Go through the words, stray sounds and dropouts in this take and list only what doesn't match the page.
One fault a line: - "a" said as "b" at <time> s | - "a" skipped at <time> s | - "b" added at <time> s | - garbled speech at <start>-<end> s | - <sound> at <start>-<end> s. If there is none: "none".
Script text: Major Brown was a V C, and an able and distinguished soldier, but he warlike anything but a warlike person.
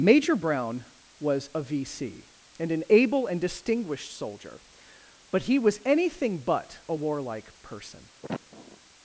- "warlike" said as "was" at 5.6 s
- sniff at 8.2-8.8 s